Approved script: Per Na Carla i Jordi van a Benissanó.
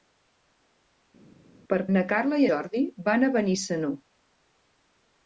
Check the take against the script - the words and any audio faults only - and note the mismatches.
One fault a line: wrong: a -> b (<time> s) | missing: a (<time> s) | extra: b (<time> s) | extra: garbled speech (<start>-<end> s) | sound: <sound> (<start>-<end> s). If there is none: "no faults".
no faults